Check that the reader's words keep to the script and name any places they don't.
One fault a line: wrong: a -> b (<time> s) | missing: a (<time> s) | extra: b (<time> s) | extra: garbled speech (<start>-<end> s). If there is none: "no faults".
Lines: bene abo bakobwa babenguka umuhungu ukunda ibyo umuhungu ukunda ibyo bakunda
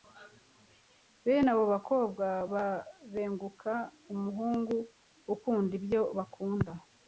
missing: umuhungu ukunda ibyo (6.0 s)